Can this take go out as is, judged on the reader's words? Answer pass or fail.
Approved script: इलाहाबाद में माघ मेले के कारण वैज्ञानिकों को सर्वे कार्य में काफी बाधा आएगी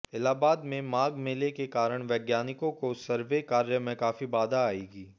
pass